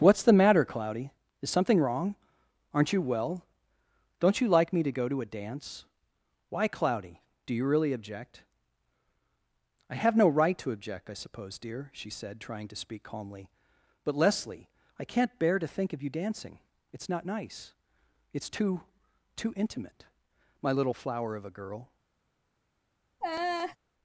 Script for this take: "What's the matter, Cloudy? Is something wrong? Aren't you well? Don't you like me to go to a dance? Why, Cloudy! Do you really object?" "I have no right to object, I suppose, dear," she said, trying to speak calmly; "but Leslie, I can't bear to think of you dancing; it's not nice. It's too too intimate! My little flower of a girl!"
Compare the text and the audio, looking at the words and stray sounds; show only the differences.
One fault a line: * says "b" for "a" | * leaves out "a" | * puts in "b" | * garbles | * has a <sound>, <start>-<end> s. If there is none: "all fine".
* has a laugh, 23.2-23.8 s